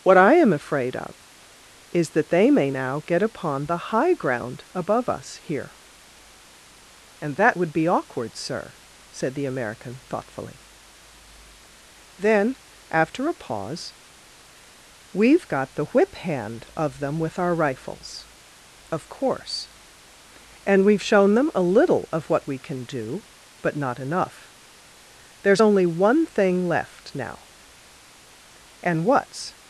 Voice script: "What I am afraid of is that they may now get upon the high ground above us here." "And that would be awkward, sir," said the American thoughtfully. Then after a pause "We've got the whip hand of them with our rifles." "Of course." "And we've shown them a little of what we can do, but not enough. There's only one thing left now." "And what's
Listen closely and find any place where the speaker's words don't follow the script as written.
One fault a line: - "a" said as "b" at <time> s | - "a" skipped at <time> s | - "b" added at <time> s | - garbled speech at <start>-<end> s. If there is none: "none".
none